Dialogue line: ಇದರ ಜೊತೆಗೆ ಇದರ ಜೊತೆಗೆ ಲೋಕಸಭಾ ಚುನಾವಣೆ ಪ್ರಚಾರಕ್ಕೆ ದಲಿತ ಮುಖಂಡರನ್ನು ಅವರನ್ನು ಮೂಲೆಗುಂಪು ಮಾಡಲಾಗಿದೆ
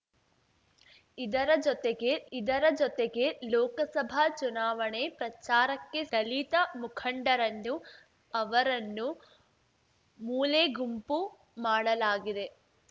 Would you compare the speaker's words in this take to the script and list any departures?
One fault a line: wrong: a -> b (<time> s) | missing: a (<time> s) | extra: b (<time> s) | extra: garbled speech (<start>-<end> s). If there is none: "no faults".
no faults